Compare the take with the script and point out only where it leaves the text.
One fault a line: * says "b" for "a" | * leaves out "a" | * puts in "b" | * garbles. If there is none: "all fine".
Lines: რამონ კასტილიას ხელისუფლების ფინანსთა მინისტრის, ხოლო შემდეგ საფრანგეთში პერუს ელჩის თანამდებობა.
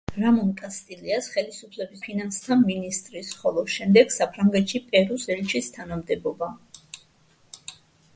all fine